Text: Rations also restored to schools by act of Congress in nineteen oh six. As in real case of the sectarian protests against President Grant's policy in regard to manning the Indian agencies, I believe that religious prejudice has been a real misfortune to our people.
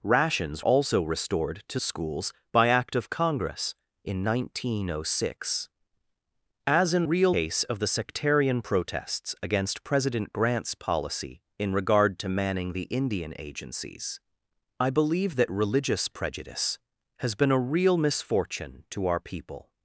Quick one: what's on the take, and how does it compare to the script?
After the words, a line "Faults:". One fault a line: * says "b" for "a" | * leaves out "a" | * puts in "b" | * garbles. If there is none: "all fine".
Rations also restored to schools by act of Congress in nineteen oh six. As in real case of the sectarian protests against President Grant's policy in regard to manning the Indian agencies, I believe that religious prejudice has been a real misfortune to our people.
Faults:
all fine